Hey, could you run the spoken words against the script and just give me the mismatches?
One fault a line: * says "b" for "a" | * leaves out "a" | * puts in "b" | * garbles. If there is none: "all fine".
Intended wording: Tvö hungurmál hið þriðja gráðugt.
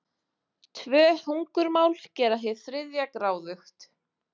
* puts in "gera"